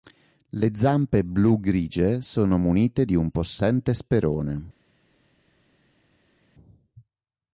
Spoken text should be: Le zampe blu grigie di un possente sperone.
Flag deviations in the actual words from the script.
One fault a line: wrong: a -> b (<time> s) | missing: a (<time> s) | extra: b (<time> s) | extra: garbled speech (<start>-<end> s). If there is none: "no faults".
extra: sono munite (2.2 s)